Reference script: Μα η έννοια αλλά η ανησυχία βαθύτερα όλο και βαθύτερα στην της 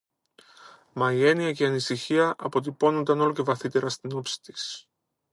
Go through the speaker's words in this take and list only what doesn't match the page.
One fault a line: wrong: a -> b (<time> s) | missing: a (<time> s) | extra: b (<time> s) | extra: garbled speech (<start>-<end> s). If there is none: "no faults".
wrong: αλλά -> και (1.5 s)
wrong: βαθύτερα -> αποτυπώνουνταν (2.4 s)
extra: όψη (4.1 s)